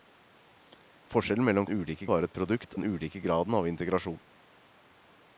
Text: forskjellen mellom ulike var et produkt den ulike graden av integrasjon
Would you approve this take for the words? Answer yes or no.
yes